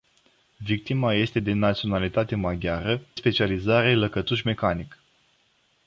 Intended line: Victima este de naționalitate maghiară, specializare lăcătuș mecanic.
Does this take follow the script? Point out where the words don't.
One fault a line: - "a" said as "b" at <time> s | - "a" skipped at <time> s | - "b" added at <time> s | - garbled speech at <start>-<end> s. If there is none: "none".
none